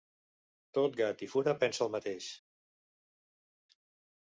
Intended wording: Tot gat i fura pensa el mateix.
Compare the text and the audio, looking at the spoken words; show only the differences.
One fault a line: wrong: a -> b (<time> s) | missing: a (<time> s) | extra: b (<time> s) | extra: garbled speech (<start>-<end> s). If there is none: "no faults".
no faults